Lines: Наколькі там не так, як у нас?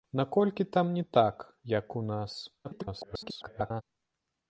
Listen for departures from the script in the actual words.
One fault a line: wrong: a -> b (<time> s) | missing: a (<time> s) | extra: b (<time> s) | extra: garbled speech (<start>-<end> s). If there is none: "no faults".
extra: garbled speech (2.6-3.8 s)